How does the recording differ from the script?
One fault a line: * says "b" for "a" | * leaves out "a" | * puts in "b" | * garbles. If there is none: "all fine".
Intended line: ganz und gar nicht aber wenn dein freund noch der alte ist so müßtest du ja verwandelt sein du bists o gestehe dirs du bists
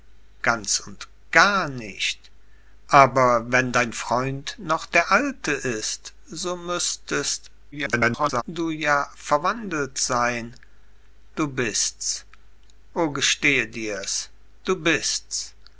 * garbles